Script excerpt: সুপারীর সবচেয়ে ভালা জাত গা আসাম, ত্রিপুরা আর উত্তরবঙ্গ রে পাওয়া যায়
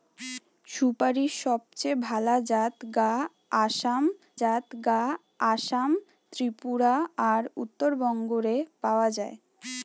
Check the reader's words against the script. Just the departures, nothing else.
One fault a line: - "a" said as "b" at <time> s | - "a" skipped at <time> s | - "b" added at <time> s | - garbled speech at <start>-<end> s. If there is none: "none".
- "জাত গা আসাম" added at 4.4 s